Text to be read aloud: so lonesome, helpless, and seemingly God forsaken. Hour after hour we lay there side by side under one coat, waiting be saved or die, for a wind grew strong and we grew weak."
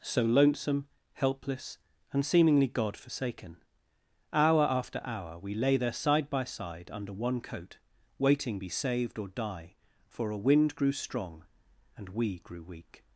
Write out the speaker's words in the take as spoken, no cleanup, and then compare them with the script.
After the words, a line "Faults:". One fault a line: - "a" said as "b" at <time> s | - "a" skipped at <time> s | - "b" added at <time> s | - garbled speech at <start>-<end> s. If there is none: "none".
so lonesome, helpless, and seemingly God forsaken. Hour after hour we lay there side by side under one coat, waiting be saved or die, for a wind grew strong and we grew weak."
Faults:
none